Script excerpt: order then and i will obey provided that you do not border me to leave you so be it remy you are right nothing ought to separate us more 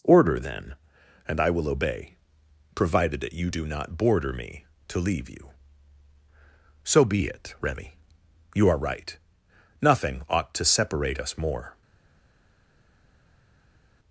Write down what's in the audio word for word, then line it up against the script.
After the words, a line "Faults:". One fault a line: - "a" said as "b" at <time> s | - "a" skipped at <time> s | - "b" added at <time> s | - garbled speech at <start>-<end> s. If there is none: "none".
order then and i will obey provided that you do not border me to leave you so be it remy you are right nothing ought to separate us more
Faults:
none